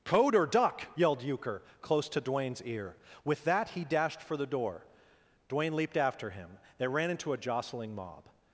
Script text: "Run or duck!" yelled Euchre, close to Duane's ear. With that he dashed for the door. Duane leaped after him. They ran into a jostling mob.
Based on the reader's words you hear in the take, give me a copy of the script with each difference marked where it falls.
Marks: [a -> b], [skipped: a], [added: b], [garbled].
["Run -> Code] or duck!" yelled Euchre, close to Duane's ear. With that he dashed for the door. Duane leaped after him. They ran into a jostling mob.